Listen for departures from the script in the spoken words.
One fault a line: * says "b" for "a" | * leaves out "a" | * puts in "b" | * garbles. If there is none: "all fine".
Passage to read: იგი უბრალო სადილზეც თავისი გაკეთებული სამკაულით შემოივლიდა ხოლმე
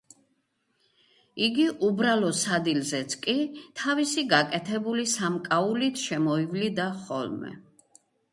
* puts in "კი"